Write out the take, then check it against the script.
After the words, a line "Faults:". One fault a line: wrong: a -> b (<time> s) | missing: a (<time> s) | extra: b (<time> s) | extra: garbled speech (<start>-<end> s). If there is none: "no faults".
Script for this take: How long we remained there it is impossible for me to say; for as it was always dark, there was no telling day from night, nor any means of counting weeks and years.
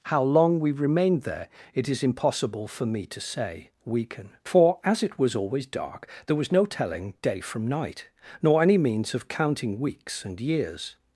How long we remained there it is impossible for me to say; weaken for as it was always dark, there was no telling day from night, nor any means of counting weeks and years.
Faults:
extra: weaken (3.9 s)